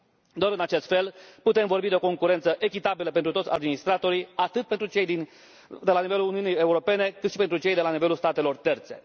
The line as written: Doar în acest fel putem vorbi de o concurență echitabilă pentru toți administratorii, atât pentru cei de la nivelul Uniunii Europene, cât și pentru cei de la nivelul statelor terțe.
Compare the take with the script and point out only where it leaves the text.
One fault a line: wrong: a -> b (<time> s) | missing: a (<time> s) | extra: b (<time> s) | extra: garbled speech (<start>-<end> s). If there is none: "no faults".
no faults